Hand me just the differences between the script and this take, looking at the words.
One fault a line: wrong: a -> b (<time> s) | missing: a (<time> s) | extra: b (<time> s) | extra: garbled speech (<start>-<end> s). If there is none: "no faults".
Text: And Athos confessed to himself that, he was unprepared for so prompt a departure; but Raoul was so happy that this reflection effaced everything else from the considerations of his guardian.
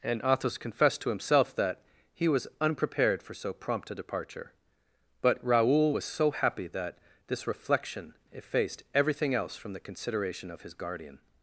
wrong: considerations -> consideration (9.8 s)